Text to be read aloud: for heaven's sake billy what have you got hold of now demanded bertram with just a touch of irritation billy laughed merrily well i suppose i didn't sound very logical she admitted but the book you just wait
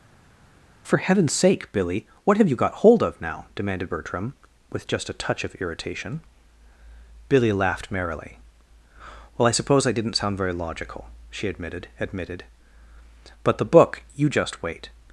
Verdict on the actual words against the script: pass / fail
fail